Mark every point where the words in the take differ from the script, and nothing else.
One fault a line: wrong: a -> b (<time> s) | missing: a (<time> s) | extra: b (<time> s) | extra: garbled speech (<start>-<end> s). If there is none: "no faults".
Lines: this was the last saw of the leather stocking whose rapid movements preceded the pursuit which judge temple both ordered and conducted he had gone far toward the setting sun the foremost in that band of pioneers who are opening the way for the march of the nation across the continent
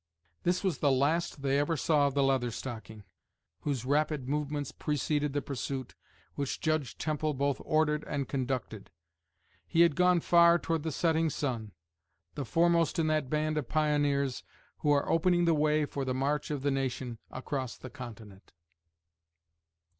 extra: they ever (1.4 s)